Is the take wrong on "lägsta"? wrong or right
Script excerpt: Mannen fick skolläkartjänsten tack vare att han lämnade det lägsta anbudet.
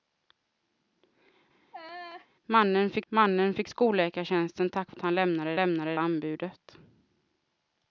wrong